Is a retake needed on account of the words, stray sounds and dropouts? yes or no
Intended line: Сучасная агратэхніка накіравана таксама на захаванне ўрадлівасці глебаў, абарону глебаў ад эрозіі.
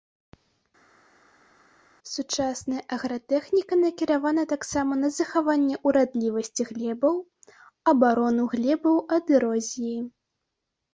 no